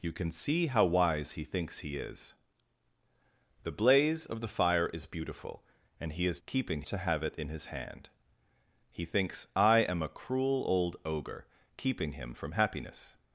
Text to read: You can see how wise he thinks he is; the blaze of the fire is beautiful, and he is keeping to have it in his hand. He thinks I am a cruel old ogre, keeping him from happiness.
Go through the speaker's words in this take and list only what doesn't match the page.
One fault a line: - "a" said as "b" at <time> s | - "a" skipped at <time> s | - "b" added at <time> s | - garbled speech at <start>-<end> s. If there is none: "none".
none